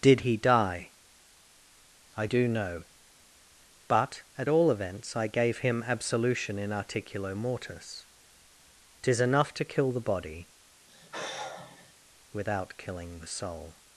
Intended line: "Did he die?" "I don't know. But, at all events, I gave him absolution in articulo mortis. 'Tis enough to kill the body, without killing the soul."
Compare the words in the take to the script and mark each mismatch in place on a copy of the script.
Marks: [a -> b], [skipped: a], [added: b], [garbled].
"Did he die?" "I [don't -> do] know. But, at all events, I gave him absolution in articulo mortis. 'Tis enough to kill the body, without killing the soul."